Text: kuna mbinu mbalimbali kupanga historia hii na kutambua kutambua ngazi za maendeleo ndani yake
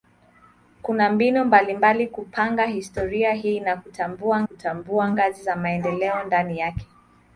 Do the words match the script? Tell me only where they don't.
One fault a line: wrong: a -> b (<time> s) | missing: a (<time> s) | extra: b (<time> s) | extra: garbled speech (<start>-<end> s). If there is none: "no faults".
no faults